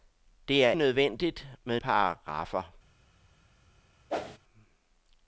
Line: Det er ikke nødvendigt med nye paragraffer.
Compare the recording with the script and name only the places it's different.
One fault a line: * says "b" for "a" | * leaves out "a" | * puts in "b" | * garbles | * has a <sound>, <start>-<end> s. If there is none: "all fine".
* leaves out "ikke"
* leaves out "nye"
* has a whoosh, 4.1-4.4 s